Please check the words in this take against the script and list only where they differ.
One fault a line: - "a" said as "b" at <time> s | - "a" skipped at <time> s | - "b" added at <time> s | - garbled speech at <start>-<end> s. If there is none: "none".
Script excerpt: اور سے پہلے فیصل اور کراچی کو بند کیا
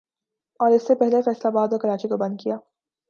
- "اس" added at 0.7 s
- "آباد" added at 1.5 s